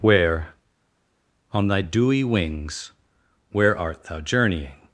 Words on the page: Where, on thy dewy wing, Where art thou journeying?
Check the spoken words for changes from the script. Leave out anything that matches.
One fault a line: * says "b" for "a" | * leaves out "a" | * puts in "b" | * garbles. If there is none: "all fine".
* says "wings" for "wing"